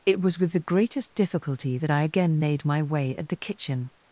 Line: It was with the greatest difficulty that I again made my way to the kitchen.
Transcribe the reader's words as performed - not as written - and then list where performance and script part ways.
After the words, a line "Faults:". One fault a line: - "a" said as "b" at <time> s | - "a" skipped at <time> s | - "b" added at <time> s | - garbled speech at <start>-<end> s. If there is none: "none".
It was with the greatest difficulty that I again made my way at the kitchen.
Faults:
- "to" said as "at" at 3.2 s